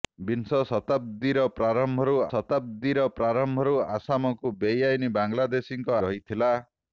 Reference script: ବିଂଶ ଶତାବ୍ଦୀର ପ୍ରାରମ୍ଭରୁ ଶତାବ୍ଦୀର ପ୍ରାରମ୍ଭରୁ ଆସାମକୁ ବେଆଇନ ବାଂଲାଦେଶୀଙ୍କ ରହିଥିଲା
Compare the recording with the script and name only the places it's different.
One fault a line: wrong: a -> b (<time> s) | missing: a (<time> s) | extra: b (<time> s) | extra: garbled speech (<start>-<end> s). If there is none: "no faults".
no faults